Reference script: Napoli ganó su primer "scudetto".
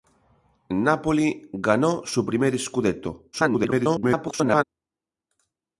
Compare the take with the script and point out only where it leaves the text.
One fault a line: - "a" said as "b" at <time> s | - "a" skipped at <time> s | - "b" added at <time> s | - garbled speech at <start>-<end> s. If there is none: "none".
- garbled speech at 3.3-4.6 s